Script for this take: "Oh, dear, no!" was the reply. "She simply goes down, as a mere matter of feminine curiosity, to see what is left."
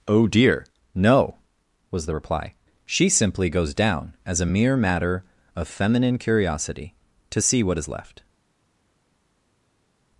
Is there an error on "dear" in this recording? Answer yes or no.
no